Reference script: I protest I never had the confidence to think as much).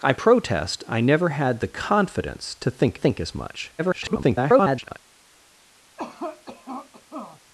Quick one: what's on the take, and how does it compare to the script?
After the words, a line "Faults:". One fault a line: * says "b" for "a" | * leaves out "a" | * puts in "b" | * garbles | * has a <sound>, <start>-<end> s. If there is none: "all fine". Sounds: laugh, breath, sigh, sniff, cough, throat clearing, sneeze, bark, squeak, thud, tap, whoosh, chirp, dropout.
I protest I never had the confidence to think think as much). [garbled]
Faults:
* puts in "think"
* garbles
* has a cough, 6.0-7.4 s